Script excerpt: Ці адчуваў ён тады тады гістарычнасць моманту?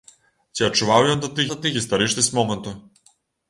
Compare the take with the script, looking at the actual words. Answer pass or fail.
pass